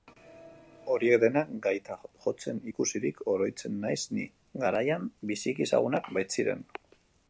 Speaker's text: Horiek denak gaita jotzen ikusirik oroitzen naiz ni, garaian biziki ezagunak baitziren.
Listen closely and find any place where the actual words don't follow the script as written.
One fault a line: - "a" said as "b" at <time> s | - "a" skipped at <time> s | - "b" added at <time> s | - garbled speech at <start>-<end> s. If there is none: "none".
none